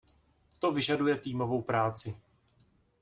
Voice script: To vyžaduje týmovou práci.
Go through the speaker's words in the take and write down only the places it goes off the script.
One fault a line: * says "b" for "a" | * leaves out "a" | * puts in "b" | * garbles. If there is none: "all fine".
all fine